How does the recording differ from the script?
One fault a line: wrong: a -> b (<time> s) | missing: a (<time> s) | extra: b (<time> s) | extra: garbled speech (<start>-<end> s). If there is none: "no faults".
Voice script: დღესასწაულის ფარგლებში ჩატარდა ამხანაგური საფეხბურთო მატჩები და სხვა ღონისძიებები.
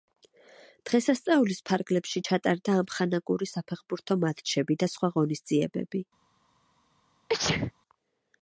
no faults